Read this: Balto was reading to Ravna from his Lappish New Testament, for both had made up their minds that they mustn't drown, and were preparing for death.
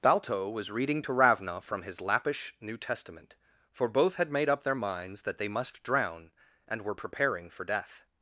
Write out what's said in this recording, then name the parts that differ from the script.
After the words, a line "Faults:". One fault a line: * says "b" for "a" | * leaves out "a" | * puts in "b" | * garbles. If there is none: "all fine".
Balto was reading to Ravna from his Lappish New Testament, for both had made up their minds that they must drown, and were preparing for death.
Faults:
* says "must" for "mustn't"